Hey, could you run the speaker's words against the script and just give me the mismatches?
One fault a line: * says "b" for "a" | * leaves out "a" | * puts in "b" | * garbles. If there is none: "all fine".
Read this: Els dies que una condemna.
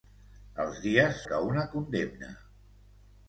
all fine